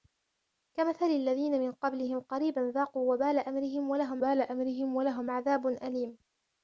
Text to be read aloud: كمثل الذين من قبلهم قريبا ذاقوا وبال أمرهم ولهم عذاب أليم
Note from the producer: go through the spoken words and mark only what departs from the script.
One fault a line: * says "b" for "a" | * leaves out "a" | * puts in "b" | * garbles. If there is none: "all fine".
* puts in "وبال أمرهم ولهم"